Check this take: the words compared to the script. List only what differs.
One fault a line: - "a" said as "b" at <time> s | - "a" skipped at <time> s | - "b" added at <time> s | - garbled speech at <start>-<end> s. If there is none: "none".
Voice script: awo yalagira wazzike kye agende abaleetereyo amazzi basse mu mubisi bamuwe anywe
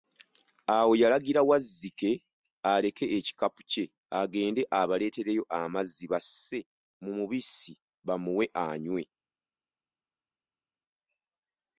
- "aleke ekikapu" added at 2.7 s